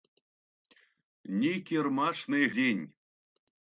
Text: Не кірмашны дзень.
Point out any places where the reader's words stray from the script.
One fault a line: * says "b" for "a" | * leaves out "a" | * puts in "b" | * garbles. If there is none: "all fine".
all fine